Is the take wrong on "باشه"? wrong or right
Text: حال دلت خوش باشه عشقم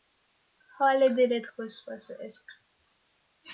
right